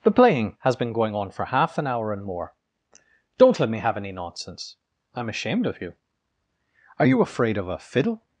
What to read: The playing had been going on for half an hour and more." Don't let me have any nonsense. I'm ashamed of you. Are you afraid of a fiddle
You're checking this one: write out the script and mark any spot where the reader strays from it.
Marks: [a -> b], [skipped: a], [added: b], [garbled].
The playing [had -> has] been going on for half an hour and more." Don't let me have any nonsense. I'm ashamed of you. Are you afraid of a fiddle